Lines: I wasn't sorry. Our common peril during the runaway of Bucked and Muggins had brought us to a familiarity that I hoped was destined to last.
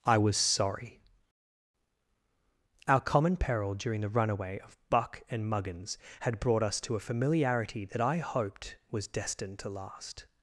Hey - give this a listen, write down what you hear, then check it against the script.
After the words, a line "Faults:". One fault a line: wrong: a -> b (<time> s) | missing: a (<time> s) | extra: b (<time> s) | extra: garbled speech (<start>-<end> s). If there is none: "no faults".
I was sorry. Our common peril during the runaway of Buck and Muggins had brought us to a familiarity that I hoped was destined to last.
Faults:
wrong: wasn't -> was (0.2 s)
wrong: Bucked -> Buck (4.9 s)